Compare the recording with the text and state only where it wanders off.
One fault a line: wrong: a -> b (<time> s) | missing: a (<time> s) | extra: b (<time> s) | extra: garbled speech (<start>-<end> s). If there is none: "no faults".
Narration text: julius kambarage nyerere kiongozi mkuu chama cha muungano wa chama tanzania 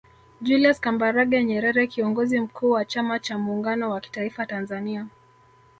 extra: wa (2.7 s)
wrong: chama -> kitaifa (4.0 s)